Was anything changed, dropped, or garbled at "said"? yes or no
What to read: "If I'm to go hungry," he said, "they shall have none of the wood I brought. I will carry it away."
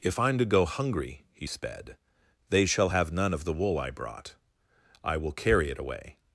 yes